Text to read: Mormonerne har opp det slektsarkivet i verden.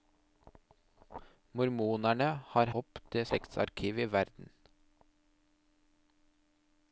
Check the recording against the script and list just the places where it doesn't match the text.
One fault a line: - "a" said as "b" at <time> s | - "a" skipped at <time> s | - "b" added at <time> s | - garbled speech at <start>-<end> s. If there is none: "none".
none